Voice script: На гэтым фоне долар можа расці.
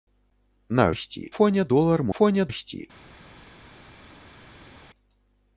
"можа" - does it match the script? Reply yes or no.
no